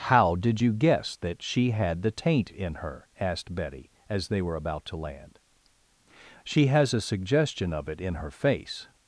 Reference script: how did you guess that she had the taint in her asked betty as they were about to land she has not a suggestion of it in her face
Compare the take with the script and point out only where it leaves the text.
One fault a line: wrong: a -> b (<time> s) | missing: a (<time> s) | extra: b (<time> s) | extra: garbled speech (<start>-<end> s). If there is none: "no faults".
missing: not (6.9 s)